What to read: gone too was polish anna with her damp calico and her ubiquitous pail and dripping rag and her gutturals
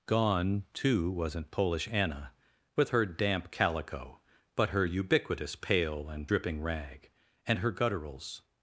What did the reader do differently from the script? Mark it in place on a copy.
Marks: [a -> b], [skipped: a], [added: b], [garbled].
gone too [was -> wasn't] polish anna with her damp calico [and -> but] her ubiquitous pail and dripping rag and her gutturals